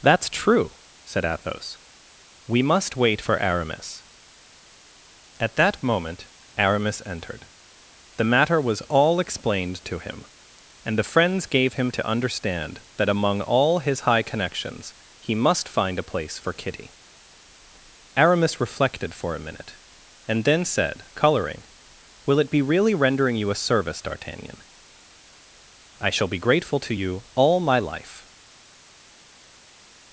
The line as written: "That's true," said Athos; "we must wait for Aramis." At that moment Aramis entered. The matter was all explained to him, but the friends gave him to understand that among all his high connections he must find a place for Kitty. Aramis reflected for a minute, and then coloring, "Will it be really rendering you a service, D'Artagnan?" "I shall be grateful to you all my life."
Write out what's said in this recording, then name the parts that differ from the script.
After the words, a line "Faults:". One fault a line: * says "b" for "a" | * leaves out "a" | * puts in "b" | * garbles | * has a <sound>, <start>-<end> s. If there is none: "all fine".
"That's true," said Athos; "we must wait for Aramis." At that moment Aramis entered. The matter was all explained to him, and the friends gave him to understand that among all his high connections he must find a place for Kitty. Aramis reflected for a minute, and then said, coloring, "Will it be really rendering you a service, D'Artagnan?" "I shall be grateful to you all my life."
Faults:
* says "and" for "but"
* puts in "said"